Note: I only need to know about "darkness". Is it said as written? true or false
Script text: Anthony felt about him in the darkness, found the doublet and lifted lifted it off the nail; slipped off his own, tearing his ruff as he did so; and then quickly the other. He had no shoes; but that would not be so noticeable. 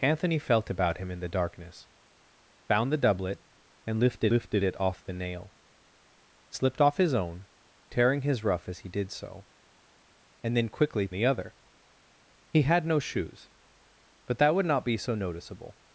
true